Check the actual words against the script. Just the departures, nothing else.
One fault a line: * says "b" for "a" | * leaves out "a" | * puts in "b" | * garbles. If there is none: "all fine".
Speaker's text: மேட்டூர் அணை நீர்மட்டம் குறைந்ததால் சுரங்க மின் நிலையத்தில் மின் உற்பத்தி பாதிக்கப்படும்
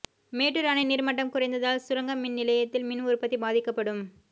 all fine